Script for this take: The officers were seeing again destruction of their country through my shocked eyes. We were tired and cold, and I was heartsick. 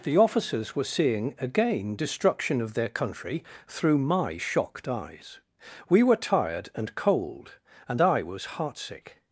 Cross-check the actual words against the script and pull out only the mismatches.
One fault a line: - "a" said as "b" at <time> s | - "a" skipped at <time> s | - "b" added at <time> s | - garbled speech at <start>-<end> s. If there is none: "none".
none